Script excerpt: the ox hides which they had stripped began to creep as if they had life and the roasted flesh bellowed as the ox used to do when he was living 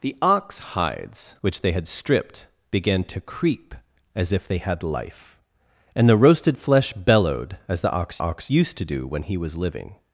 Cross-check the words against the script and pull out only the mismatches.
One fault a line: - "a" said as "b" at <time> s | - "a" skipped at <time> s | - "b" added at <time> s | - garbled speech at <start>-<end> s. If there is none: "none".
- "ox" added at 8.2 s